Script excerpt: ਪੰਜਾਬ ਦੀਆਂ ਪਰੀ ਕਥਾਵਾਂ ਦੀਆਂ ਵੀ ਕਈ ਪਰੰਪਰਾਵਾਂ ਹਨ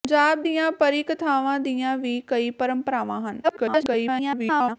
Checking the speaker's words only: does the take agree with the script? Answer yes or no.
no